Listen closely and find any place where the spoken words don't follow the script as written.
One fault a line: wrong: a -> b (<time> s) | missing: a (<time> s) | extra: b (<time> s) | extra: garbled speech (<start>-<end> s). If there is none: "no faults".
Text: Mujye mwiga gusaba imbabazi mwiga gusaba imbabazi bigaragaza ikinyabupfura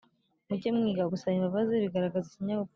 missing: mwiga gusaba imbabazi (1.7 s)